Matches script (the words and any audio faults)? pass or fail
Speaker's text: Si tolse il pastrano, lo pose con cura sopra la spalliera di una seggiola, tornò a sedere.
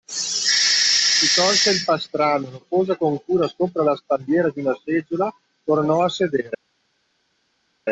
pass